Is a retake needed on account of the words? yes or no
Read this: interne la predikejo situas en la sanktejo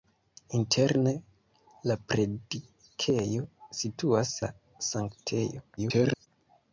yes